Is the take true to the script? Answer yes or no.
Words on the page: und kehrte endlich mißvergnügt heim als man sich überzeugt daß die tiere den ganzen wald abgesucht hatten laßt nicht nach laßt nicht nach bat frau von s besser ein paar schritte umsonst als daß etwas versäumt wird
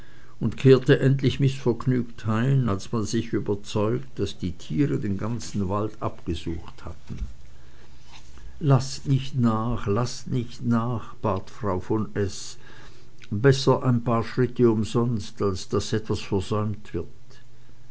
yes